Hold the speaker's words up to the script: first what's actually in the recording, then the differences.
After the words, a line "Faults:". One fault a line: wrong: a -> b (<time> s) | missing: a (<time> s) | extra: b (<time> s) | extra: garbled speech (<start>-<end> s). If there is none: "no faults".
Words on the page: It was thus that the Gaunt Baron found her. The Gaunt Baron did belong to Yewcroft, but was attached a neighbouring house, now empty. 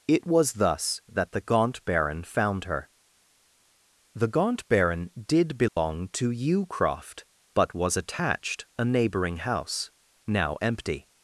It was thus that the Gaunt Baron found her. The Gaunt Baron did belong to Yewcroft, but was attached a neighbouring house, now empty.
Faults:
no faults